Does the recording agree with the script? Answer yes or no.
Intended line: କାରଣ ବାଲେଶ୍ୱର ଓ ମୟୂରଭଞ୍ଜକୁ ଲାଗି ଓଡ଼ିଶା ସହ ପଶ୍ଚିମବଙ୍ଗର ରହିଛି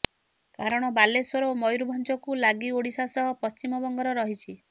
yes